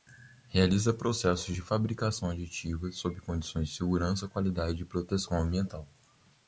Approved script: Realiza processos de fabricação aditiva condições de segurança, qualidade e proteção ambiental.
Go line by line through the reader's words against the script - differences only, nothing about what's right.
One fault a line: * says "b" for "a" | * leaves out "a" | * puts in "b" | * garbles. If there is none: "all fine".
* puts in "sob"